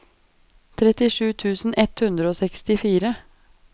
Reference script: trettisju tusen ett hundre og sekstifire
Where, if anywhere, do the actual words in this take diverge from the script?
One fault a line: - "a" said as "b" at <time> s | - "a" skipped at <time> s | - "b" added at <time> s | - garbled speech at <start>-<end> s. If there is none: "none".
none